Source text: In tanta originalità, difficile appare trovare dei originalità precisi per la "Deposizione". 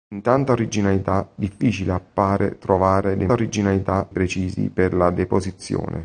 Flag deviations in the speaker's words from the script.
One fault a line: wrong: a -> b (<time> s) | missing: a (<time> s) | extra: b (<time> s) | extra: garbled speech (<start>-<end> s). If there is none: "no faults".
no faults